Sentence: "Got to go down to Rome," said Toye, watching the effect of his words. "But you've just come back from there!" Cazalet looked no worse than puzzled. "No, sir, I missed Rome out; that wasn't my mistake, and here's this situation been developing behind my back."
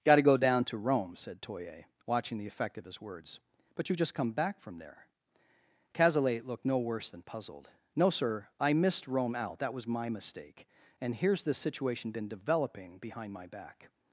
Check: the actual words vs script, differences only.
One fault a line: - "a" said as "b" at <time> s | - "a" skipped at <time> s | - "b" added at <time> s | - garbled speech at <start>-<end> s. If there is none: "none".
- "wasn't" said as "was" at 9.7 s